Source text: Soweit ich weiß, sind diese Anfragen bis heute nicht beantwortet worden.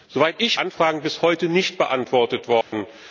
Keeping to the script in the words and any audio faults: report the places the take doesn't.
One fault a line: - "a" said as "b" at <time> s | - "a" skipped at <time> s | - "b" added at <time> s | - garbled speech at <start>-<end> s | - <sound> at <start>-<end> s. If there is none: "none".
- "weiß sind diese" skipped at 0.6 s
- dropout at 2.6-2.7 s